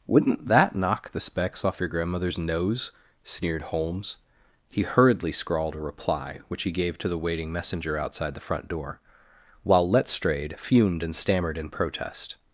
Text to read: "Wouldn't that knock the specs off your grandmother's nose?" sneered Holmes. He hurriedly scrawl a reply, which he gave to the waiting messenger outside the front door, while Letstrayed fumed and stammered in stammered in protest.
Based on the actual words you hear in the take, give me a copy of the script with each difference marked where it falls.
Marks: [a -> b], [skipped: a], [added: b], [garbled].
"Wouldn't that knock the specs off your grandmother's nose?" sneered Holmes. He hurriedly [scrawl -> scrawled] a reply, which he gave to the waiting messenger outside the front door, while Letstrayed fumed and stammered in [skipped: stammered in] protest.